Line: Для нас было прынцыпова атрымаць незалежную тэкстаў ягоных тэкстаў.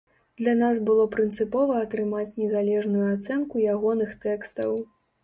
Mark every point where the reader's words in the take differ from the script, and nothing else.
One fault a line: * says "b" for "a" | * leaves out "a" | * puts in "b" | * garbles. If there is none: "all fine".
* says "ацэнку" for "тэкстаў"